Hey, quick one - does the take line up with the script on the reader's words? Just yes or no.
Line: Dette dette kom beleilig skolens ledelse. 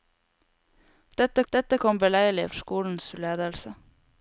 yes